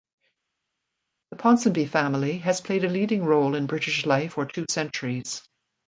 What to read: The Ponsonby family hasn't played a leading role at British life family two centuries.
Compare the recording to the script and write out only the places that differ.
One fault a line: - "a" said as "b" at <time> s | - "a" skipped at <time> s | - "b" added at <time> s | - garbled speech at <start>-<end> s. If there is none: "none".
- "hasn't" said as "has" at 2.4 s
- "at" said as "in" at 3.5 s
- "family" said as "for" at 4.3 s